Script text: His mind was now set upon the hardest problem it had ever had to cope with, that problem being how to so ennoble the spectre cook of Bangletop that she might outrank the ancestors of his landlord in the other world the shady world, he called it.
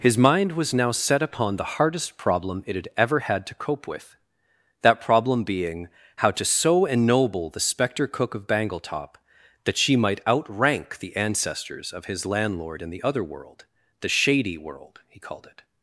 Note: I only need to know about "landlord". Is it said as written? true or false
true